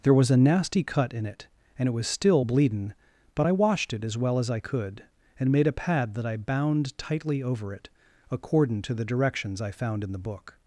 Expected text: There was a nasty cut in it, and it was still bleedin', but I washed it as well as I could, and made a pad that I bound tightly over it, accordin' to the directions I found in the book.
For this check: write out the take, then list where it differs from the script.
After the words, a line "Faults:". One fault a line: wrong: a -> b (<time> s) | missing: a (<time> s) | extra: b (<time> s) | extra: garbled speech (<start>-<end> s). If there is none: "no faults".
There was a nasty cut in it, and it was still bleedin', but I washed it as well as I could, and made a pad that I bound tightly over it, accordin' to the directions I found in the book.
Faults:
no faults